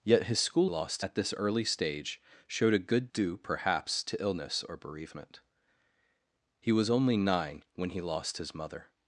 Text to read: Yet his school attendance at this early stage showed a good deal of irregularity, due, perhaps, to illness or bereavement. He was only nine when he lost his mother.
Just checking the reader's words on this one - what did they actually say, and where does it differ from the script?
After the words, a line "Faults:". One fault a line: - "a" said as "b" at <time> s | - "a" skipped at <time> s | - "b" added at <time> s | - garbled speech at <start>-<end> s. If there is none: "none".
Yet his school lost at this early stage showed a good due, perhaps, to illness or bereavement. He was only nine when he lost his mother.
Faults:
- "attendance" said as "lost" at 0.7 s
- "deal of irregularity" skipped at 3.1 s